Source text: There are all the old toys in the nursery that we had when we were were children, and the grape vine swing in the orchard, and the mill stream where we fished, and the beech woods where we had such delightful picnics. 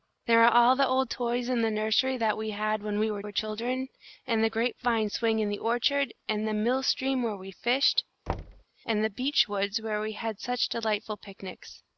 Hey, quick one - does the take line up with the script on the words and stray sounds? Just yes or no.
no